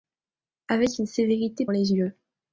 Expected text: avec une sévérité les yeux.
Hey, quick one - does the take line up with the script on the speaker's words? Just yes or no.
yes